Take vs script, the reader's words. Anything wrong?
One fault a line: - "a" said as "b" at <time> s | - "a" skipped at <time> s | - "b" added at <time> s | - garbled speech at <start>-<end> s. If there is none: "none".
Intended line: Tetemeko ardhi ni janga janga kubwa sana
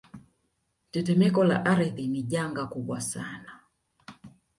- "la" added at 1.4 s
- "janga" skipped at 2.6 s